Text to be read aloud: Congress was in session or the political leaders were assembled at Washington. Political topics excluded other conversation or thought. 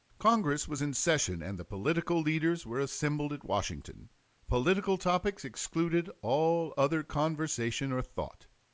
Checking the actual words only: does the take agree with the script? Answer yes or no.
no